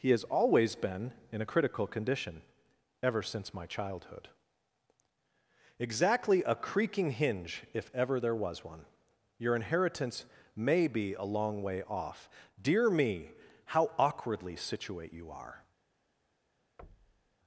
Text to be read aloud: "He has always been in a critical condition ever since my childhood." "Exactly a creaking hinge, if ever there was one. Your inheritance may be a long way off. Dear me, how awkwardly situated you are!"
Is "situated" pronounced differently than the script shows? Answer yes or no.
yes